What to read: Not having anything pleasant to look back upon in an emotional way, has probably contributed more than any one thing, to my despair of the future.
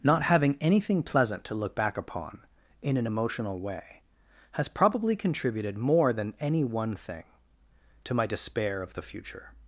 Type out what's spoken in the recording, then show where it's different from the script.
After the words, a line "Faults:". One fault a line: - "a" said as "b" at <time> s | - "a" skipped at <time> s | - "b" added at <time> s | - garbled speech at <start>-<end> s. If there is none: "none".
Not having anything pleasant to look back upon in an emotional way, has probably contributed more than any one thing, to my despair of the future.
Faults:
none